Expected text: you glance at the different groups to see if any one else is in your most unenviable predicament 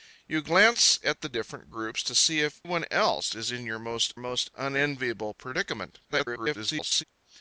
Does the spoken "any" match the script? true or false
false